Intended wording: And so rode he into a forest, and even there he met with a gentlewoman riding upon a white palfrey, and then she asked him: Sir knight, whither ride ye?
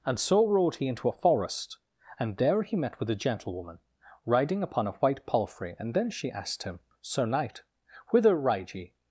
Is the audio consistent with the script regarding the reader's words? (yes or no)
no